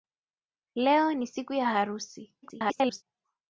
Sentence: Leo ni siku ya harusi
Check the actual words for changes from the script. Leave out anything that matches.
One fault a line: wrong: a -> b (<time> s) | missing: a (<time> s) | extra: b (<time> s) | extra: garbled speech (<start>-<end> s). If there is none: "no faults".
extra: garbled speech (2.4-3.0 s)